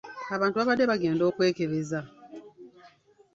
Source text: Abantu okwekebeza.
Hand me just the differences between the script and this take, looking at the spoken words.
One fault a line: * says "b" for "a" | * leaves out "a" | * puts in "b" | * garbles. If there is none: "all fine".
* puts in "babadde bagenda"